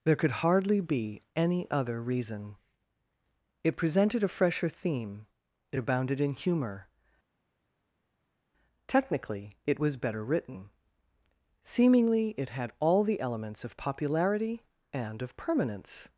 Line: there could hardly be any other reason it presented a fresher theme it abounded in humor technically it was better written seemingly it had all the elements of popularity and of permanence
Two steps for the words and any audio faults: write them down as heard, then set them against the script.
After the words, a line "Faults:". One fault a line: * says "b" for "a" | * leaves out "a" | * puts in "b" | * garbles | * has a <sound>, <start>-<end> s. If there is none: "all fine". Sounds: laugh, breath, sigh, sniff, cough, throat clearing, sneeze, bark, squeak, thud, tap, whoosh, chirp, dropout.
there could hardly be any other reason it presented a fresher theme it abounded in humor technically it was better written seemingly it had all the elements of popularity and of permanence
Faults:
all fine